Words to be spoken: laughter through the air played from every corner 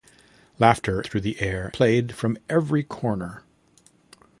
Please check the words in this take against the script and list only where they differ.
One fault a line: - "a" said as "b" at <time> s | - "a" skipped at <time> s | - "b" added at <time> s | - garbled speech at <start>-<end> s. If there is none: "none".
none